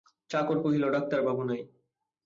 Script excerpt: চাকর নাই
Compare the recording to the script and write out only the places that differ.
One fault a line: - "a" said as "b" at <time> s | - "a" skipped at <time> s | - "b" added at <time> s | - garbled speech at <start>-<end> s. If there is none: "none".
- "কহিল ডাক্তারবাবু" added at 0.6 s